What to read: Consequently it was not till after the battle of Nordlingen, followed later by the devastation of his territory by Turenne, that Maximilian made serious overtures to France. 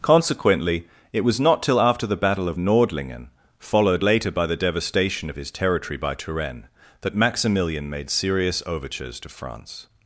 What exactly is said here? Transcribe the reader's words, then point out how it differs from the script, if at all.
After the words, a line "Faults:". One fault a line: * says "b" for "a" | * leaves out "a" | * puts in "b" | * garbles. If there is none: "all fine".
Consequently it was not till after the battle of Nordlingen, followed later by the devastation of his territory by Turenne, that Maximilian made serious overtures to France.
Faults:
all fine